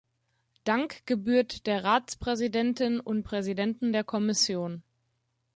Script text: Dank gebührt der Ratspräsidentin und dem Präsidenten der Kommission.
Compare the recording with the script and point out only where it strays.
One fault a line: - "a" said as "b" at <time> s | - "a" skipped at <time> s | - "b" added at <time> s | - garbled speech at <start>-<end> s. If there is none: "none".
- "dem" skipped at 3.3 s